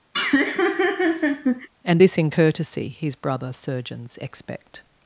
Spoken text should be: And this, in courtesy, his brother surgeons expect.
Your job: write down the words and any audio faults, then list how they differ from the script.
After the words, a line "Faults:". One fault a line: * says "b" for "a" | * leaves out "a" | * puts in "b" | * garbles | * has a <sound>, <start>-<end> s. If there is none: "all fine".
And this, in courtesy, his brother surgeons expect.
Faults:
* has a laugh, 0.1-1.7 s